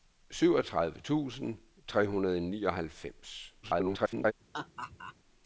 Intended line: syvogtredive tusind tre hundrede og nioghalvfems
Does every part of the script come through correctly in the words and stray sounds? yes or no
no